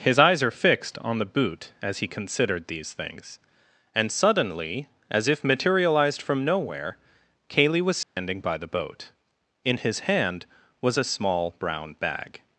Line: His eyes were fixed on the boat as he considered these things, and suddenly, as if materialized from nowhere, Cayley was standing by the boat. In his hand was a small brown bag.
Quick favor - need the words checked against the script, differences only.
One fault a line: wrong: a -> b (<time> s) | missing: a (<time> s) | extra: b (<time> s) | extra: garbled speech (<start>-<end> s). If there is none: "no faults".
wrong: were -> are (0.4 s)
wrong: boat -> boot (1.2 s)